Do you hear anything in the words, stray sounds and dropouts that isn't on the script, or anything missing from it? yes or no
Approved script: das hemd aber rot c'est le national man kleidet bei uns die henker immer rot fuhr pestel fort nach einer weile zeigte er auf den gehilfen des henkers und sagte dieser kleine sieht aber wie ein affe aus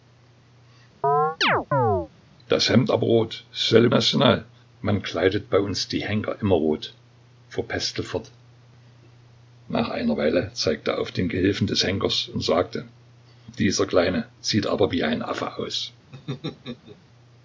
yes